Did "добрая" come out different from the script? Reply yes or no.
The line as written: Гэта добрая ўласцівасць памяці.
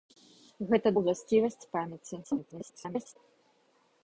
yes